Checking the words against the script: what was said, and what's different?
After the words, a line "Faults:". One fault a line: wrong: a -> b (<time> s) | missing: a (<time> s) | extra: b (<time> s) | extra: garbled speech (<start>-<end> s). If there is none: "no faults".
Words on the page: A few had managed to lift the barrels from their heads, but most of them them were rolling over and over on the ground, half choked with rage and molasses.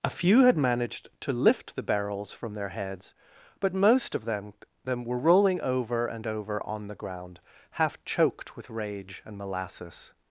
A few had managed to lift the barrels from their heads, but most of them them were rolling over and over on the ground, half choked with rage and molasses.
Faults:
no faults